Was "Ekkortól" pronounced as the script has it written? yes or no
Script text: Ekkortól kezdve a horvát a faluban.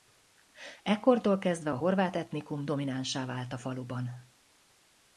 yes